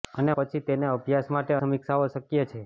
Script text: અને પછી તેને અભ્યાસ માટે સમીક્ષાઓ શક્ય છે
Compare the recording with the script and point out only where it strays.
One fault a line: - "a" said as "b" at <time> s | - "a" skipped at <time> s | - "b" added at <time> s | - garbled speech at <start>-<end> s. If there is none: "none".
none